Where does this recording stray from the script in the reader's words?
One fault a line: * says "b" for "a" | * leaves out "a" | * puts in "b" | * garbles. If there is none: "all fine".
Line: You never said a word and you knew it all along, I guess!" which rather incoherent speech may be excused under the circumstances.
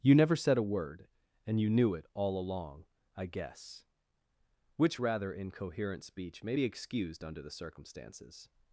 all fine